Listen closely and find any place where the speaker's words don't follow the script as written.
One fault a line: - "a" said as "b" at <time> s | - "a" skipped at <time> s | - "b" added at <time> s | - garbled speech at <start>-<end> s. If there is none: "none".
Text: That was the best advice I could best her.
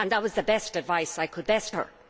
none